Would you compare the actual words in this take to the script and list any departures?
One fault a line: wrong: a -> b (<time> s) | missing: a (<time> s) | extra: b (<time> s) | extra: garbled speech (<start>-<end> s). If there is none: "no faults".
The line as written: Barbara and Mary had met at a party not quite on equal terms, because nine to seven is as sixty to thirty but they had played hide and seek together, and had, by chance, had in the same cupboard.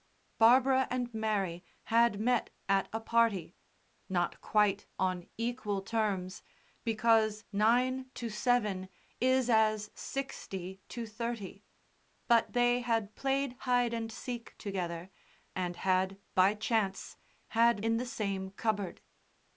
no faults